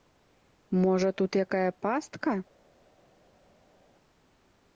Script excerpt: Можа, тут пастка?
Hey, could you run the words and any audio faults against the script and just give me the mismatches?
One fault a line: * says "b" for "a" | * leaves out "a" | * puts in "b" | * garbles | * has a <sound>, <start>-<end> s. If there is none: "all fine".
* puts in "якая"